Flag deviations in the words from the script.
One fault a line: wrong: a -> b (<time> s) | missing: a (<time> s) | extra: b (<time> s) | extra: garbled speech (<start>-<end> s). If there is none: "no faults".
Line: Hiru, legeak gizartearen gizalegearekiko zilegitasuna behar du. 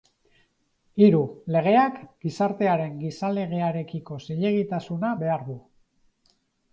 no faults